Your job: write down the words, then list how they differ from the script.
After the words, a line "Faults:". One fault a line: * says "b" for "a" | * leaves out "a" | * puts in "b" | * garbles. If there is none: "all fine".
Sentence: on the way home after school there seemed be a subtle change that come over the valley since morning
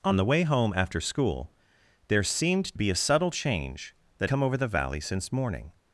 on the way home after school there seemed be a subtle change that come over the valley since morning
Faults:
all fine